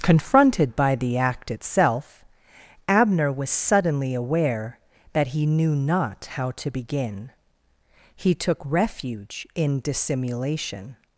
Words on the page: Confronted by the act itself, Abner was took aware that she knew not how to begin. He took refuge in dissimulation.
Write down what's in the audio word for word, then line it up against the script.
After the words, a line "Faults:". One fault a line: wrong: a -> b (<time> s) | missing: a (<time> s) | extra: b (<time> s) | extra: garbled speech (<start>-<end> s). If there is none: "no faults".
Confronted by the act itself, Abner was suddenly aware that he knew not how to begin. He took refuge in dissimulation.
Faults:
wrong: took -> suddenly (3.5 s)
wrong: she -> he (5.3 s)